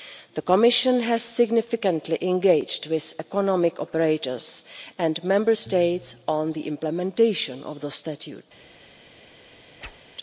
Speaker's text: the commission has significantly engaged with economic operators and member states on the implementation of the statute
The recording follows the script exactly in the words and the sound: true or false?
false